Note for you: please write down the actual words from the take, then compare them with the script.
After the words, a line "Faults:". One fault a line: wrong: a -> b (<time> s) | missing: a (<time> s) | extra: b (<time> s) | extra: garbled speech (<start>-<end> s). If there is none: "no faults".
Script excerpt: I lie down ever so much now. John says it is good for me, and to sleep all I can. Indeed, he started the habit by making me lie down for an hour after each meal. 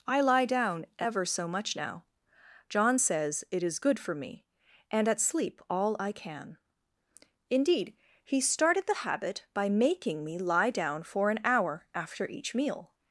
I lie down ever so much now. John says it is good for me, and at sleep all I can. Indeed, he started the habit by making me lie down for an hour after each meal.
Faults:
wrong: to -> at (5.1 s)